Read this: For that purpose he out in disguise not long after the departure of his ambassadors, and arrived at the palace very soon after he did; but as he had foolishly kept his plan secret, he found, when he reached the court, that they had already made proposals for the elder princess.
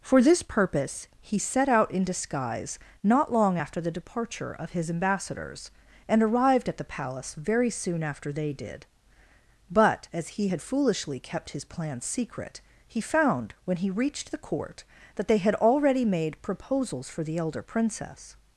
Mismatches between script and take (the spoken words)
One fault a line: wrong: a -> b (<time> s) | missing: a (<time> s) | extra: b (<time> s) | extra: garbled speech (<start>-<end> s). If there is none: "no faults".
wrong: that -> this (0.2 s)
extra: set (1.4 s)
wrong: he -> they (8.3 s)